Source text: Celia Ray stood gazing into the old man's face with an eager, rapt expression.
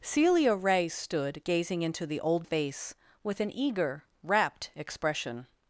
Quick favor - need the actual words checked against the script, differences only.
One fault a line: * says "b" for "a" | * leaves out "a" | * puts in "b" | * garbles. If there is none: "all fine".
* leaves out "man's"